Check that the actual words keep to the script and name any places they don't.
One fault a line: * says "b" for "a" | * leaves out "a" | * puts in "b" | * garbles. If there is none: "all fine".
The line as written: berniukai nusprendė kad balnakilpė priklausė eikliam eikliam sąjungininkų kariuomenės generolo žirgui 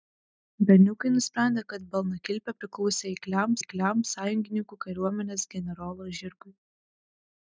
all fine